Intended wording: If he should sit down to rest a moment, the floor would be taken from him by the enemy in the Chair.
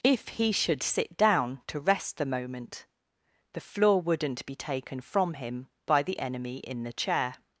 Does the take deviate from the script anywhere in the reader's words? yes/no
yes